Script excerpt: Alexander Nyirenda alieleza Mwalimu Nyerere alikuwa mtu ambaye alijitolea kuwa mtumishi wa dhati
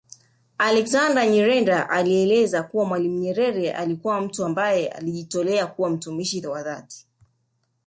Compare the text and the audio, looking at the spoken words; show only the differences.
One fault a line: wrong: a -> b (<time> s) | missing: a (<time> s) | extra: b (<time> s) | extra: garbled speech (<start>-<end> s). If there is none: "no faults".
extra: kuwa (2.6 s)